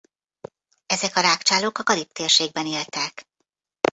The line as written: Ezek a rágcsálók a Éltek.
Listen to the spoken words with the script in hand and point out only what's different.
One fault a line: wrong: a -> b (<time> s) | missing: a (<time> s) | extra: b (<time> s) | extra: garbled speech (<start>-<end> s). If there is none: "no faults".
extra: Karib térségben (1.8 s)